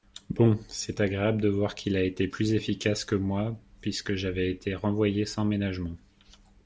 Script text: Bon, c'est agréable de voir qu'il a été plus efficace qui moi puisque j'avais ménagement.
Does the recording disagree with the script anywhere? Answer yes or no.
yes